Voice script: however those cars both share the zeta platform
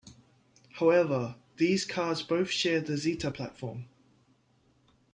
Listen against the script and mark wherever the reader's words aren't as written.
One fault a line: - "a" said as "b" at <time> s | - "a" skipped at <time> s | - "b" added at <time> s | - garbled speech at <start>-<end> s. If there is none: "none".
- "those" said as "these" at 1.6 s